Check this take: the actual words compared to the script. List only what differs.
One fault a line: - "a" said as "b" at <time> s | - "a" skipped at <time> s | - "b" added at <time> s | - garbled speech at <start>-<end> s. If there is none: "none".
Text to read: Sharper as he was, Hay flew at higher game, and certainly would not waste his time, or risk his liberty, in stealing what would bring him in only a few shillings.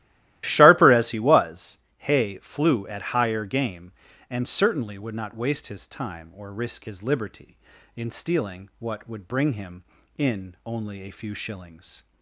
none